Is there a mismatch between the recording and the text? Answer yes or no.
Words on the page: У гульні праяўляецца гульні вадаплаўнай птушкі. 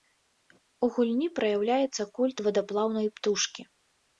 yes